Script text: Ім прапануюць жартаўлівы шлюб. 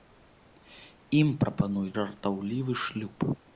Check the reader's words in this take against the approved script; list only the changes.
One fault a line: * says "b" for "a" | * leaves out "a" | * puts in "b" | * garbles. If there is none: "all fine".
all fine